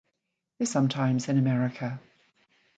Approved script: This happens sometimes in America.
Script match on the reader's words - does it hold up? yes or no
no